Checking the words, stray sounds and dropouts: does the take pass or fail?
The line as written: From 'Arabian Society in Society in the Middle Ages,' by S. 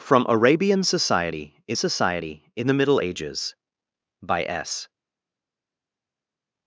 pass